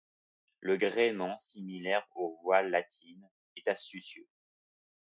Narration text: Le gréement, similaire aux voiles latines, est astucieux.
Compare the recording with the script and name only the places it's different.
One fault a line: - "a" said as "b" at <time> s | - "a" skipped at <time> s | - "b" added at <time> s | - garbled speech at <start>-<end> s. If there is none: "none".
none